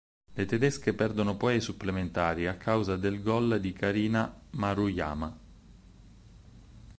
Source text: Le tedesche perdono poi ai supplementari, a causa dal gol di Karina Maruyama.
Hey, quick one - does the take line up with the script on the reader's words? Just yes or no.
no